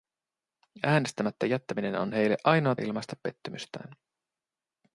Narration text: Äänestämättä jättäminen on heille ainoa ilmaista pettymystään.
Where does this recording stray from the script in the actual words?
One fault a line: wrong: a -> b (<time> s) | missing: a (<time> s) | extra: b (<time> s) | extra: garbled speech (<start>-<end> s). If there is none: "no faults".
no faults